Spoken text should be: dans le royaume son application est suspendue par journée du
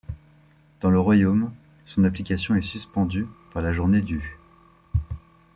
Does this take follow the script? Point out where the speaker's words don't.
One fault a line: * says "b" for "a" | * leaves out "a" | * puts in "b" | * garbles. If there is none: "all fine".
* puts in "la"